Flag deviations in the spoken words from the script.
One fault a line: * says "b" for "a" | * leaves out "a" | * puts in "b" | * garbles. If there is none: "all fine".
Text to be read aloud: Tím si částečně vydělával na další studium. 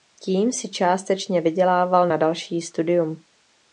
all fine